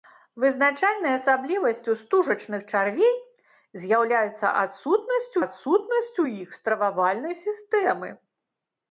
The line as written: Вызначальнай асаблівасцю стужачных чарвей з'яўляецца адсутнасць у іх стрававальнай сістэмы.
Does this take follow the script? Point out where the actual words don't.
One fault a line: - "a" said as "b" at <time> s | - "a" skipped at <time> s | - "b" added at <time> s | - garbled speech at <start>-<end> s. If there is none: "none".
- "адсутнасць" added at 5.4 s